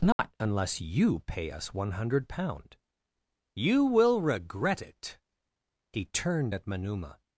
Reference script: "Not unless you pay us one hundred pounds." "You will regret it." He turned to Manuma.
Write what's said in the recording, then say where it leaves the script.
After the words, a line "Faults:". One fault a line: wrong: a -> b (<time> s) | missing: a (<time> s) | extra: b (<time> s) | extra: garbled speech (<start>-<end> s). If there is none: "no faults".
"Not unless you pay us one hundred pound." "You will regret it." He turned at Manuma.
Faults:
wrong: pounds -> pound (2.3 s)
wrong: to -> at (6.5 s)